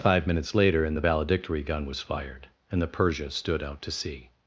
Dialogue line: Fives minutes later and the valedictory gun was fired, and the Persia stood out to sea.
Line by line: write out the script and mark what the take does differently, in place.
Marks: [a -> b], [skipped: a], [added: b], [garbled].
[Fives -> Five] minutes later and the valedictory gun was fired, and the Persia stood out to sea.